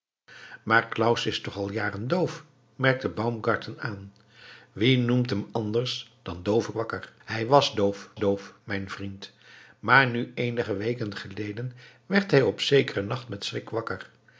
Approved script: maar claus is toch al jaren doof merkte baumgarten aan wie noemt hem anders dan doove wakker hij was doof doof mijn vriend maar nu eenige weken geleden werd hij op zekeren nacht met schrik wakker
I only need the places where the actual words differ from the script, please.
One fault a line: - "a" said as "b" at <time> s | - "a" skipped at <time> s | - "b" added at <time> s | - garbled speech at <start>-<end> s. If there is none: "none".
none